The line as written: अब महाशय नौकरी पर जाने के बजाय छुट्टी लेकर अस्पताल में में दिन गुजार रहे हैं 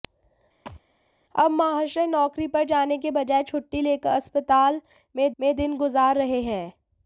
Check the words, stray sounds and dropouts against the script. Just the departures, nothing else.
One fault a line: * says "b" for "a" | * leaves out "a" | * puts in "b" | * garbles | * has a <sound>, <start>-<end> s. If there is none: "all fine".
* has a thud, 0.7-0.8 s